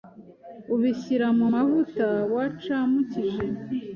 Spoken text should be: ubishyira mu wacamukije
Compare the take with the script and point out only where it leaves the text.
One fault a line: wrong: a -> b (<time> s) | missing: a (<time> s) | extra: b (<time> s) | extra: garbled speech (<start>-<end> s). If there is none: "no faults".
extra: mavuta (1.5 s)